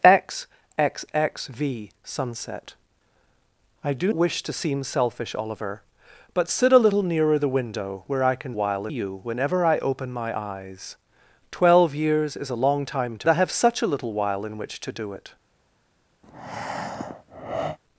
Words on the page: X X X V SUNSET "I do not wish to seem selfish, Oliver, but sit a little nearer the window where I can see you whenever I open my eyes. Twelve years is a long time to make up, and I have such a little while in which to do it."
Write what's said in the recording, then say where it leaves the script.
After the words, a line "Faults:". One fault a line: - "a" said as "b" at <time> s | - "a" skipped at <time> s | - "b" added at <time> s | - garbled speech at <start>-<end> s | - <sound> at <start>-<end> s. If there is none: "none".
X X X V SUNSET "I do wish to seem selfish, Oliver, but sit a little nearer the window where I can while you whenever I open my eyes. Twelve years is a long time to I have such a little while in which to do it."
Faults:
- "not" skipped at 4.1 s
- "see" said as "while" at 8.5 s
- "make up and" skipped at 13.3 s
- breath at 16.2-17.8 s